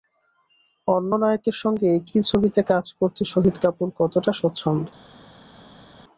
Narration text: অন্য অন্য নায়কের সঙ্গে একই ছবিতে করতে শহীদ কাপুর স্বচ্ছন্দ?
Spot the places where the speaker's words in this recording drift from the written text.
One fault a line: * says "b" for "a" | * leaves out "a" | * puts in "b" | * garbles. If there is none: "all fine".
* leaves out "অন্য"
* puts in "কাজ"
* puts in "কতটা"